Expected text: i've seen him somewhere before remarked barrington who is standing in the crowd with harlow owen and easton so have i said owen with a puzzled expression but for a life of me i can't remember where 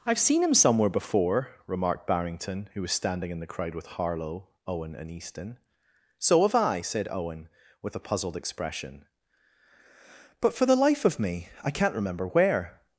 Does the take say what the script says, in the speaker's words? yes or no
no